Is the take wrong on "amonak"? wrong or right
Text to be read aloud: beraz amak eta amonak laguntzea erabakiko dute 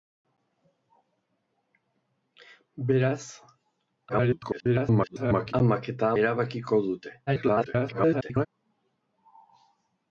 wrong